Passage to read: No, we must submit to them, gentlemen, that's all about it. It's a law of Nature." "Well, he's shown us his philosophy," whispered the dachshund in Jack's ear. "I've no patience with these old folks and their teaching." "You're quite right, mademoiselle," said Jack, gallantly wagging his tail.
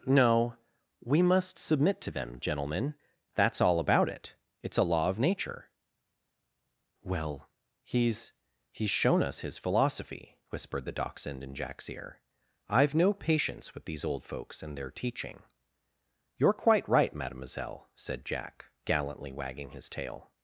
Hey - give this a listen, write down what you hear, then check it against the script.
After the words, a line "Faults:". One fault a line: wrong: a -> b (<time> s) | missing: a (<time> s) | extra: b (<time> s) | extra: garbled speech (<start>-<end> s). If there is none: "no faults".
No, we must submit to them, gentlemen, that's all about it. It's a law of Nature." "Well, he's he's shown us his philosophy," whispered the dachshund in Jack's ear. "I've no patience with these old folks and their teaching." "You're quite right, mademoiselle," said Jack, gallantly wagging his tail.
Faults:
extra: he's (8.7 s)